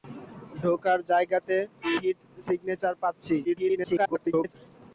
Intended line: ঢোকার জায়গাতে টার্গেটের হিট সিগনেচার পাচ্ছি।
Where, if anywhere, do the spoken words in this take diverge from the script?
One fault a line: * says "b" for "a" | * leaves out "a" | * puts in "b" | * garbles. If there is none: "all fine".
* leaves out "টার্গেটের"
* garbles